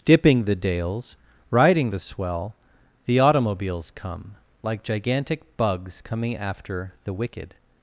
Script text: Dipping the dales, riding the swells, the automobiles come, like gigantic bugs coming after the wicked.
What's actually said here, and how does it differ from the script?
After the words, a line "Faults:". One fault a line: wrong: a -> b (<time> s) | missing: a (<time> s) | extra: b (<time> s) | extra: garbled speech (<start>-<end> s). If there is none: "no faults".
Dipping the dales, riding the swell, the automobiles come, like gigantic bugs coming after the wicked.
Faults:
wrong: swells -> swell (2.0 s)